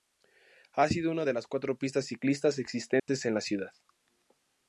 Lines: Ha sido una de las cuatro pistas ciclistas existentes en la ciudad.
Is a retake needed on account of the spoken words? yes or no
no